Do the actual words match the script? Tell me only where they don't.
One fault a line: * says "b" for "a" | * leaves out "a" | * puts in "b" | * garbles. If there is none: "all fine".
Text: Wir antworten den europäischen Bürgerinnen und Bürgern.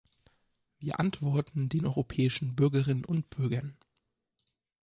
all fine